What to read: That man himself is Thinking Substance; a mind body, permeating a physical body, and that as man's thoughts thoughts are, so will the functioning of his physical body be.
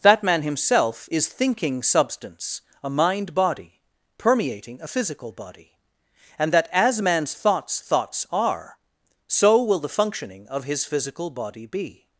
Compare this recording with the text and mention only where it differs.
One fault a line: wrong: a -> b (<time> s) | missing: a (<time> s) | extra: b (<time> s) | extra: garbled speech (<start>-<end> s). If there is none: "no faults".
no faults